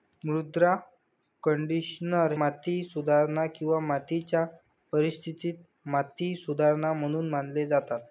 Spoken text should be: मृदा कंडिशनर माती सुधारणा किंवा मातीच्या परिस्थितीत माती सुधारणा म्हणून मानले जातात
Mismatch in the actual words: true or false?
false